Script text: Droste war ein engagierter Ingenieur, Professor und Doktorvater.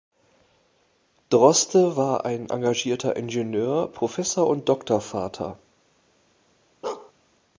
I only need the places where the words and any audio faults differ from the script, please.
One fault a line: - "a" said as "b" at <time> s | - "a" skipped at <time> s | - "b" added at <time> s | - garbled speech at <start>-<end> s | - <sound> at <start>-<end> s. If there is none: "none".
- bark at 6.8-7.1 s